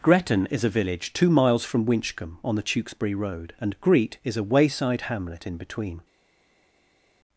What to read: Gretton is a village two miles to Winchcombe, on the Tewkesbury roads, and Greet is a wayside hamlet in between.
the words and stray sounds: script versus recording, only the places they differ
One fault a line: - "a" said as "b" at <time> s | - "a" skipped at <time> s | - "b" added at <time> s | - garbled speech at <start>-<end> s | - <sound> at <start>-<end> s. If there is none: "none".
- "to" said as "from" at 1.6 s
- "roads" said as "road" at 3.1 s